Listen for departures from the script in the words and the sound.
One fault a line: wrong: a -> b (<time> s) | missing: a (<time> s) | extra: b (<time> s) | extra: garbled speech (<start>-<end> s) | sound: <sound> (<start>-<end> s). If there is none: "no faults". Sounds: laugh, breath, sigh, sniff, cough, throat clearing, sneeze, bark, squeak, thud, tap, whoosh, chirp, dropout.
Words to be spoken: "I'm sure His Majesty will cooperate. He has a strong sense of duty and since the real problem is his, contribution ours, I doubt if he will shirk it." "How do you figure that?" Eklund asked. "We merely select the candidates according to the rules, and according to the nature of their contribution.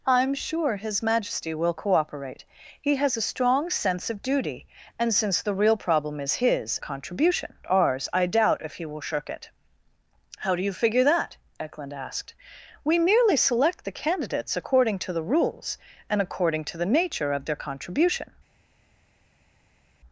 no faults